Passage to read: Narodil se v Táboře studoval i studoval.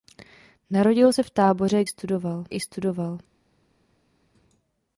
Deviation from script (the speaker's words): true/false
false